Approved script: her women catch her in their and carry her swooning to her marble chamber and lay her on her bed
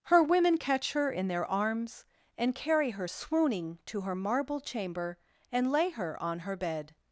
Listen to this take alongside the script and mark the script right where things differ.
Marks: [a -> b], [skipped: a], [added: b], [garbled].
her women catch her in their [added: arms] and carry her swooning to her marble chamber and lay her on her bed